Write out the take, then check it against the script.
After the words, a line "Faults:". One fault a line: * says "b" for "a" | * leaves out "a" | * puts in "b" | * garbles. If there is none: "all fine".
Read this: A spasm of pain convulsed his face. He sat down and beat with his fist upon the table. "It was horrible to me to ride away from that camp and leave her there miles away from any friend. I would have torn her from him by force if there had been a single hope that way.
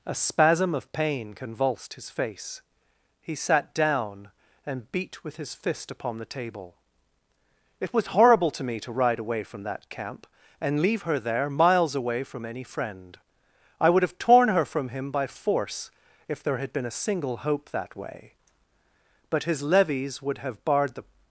A spasm of pain convulsed his face. He sat down and beat with his fist upon the table. "It was horrible to me to ride away from that camp and leave her there miles away from any friend. I would have torn her from him by force if there had been a single hope that way. But his levies would have barred the
Faults:
* puts in "But his levies would have barred the"